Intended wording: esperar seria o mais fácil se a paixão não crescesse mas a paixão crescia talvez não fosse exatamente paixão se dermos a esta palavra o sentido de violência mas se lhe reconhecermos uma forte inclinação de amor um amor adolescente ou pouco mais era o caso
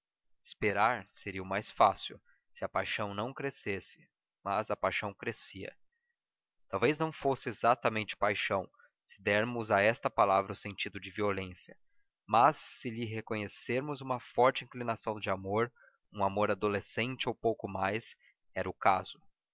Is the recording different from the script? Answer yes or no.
no